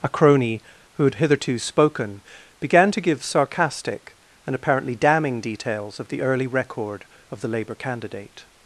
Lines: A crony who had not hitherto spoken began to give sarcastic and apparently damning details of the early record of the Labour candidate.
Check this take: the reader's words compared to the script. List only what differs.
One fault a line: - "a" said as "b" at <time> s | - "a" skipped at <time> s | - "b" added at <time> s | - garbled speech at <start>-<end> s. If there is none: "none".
- "not" skipped at 1.1 s